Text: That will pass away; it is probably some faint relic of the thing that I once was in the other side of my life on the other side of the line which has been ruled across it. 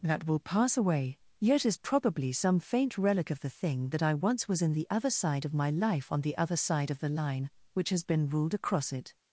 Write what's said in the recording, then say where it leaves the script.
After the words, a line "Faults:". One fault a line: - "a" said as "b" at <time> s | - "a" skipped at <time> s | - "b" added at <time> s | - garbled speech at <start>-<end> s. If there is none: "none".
That will pass away; yet is probably some faint relic of the thing that I once was in the other side of my life on the other side of the line which has been ruled across it.
Faults:
- "it" said as "yet" at 1.4 s